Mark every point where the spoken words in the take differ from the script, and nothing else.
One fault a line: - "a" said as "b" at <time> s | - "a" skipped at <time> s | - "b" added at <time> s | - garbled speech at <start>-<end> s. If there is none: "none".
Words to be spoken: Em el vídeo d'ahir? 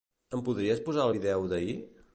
- "podries posar" added at 0.5 s